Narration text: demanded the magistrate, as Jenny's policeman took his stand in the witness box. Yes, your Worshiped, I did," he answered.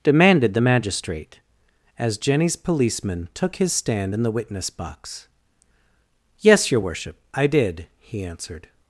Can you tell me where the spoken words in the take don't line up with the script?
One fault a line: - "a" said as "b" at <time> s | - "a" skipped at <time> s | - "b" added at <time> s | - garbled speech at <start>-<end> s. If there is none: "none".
- "Worshiped" said as "Worship" at 6.8 s